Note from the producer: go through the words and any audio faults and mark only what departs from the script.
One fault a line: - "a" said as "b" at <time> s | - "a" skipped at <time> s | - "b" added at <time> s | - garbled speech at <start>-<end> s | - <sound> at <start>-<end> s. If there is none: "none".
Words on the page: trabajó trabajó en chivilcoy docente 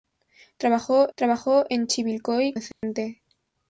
- dropout at 2.7-2.8 s